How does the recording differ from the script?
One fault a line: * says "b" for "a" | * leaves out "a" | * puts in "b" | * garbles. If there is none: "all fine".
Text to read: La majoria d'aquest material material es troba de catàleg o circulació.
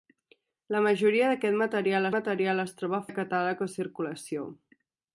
all fine